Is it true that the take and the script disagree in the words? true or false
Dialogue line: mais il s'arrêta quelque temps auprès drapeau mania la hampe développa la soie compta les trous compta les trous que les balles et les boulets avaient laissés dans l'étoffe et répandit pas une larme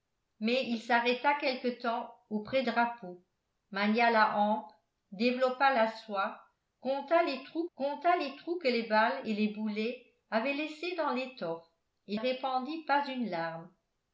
false